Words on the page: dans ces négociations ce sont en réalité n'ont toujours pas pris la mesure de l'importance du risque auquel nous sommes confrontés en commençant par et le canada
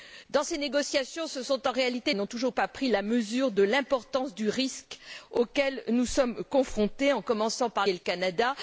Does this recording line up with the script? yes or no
yes